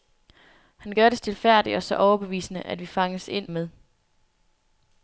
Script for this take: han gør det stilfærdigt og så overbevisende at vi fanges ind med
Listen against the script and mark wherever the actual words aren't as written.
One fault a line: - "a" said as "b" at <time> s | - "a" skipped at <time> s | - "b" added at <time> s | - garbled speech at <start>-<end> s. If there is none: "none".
none